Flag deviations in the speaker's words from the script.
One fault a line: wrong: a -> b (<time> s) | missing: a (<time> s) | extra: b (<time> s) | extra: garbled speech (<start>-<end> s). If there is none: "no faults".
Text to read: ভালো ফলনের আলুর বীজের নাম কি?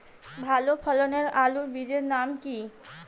no faults